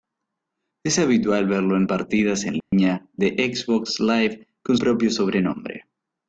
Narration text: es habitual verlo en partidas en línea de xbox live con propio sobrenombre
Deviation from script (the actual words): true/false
false